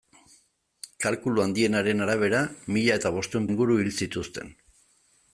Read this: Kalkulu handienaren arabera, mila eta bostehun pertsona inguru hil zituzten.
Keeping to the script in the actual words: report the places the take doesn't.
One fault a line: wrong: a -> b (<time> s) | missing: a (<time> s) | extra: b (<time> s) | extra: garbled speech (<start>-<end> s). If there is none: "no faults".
missing: pertsona (3.5 s)